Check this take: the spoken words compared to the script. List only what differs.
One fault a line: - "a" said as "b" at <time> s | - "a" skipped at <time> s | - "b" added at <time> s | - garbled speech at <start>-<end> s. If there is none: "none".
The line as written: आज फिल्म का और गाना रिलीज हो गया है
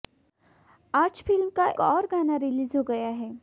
none